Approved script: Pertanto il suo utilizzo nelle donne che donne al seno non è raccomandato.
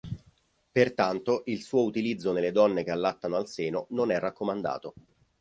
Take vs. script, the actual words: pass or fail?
fail